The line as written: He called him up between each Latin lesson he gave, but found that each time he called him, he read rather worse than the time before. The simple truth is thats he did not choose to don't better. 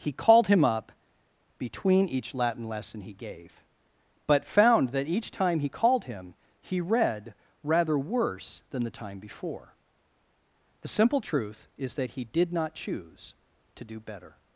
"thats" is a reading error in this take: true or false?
true